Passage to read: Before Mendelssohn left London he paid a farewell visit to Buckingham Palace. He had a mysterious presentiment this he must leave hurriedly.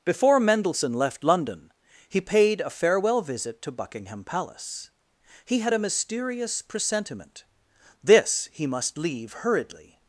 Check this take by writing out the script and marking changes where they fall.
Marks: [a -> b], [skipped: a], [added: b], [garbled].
Before Mendelssohn left London he paid a farewell visit to Buckingham Palace. He had a mysterious presentiment this he must leave hurriedly.